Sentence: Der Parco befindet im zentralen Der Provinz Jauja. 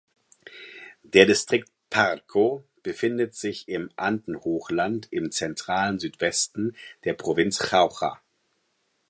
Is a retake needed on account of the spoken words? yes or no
yes